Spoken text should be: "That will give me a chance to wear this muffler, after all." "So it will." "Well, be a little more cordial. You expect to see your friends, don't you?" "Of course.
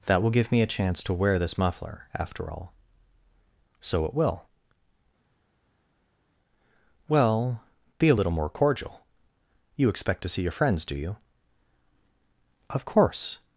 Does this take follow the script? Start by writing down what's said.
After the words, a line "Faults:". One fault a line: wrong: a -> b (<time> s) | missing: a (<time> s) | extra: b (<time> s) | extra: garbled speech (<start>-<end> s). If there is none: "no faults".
"That will give me a chance to wear this muffler, after all." "So it will." "Well, be a little more cordial. You expect to see your friends, do you?" "Of course.
Faults:
wrong: don't -> do (10.8 s)